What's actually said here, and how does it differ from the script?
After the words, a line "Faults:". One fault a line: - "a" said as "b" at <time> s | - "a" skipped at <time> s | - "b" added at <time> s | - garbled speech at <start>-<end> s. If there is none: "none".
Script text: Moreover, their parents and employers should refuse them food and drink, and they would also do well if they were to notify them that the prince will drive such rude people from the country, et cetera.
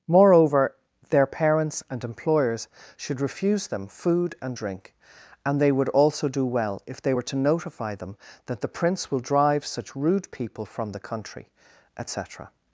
Moreover, their parents and employers should refuse them food and drink, and they would also do well if they were to notify them that the prince will drive such rude people from the country, et cetera.
Faults:
none